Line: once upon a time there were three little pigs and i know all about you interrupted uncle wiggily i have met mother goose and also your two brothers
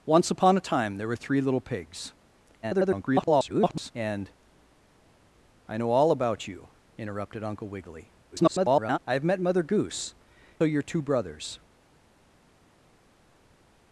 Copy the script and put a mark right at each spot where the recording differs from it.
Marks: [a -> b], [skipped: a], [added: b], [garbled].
once upon a time there were three little pigs [garbled] and i know all about you interrupted uncle wiggily [garbled] i have met mother goose [skipped: and also] your two brothers